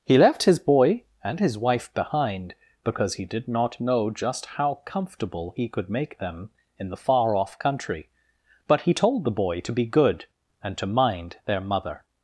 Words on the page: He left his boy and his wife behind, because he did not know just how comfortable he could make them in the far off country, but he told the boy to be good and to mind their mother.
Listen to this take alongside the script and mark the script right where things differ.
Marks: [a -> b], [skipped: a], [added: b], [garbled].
He left his boy and his wife behind, because he did not know just how comfortable he could make them in the far off country, but he told the boy to be good and to mind their mother.